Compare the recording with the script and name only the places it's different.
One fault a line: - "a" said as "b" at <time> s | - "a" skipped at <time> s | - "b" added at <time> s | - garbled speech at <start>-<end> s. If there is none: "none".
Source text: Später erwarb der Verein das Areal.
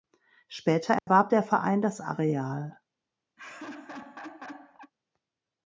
none